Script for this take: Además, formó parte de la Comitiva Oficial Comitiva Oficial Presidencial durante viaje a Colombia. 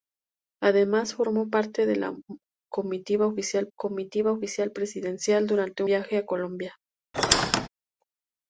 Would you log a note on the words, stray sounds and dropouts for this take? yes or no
yes